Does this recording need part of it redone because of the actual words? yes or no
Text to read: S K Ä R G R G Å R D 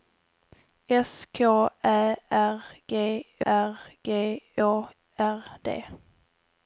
no